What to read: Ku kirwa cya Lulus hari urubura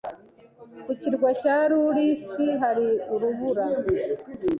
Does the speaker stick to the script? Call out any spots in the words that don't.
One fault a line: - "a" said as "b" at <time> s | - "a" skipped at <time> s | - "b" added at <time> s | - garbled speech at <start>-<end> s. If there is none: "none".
none